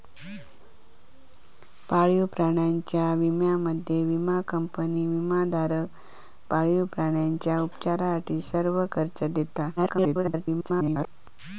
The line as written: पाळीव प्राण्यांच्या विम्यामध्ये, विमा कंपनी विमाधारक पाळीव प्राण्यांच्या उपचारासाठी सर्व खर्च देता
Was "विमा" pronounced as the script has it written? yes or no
yes